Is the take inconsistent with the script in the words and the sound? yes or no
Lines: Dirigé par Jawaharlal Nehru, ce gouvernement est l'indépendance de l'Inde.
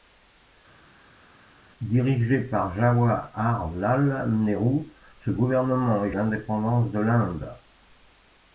no